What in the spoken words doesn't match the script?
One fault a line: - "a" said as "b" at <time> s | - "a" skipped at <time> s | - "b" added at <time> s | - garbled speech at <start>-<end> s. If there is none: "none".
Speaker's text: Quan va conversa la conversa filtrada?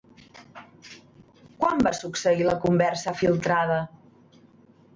- "conversa" said as "succeir" at 2.0 s